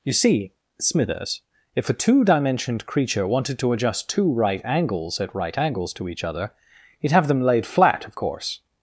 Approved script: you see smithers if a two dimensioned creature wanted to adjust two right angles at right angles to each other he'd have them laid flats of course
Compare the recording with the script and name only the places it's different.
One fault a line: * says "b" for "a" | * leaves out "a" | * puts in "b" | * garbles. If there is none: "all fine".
* says "flat" for "flats"